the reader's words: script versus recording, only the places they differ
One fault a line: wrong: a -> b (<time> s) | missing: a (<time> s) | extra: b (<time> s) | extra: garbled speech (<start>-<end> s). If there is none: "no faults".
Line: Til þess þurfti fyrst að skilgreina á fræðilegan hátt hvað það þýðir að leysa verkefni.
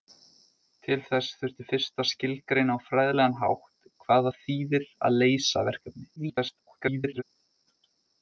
extra: garbled speech (6.2-7.2 s)